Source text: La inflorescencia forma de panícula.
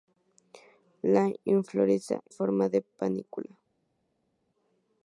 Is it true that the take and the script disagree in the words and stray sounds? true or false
false